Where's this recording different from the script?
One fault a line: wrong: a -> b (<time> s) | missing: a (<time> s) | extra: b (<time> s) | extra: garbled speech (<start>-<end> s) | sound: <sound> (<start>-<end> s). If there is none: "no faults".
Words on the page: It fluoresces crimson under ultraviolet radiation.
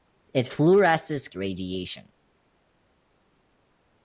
missing: crimson under ultraviolet (1.3 s)